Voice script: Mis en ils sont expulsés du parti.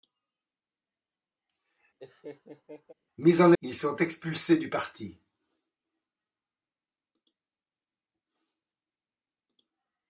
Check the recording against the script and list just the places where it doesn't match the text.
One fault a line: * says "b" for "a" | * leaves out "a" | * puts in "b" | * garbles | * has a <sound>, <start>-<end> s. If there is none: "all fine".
* has a laugh, 2.0-2.9 s